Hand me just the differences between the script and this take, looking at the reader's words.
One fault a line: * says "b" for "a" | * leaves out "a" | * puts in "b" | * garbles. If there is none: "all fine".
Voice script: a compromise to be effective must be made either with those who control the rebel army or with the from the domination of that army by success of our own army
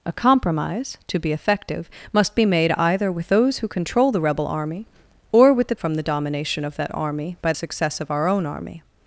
all fine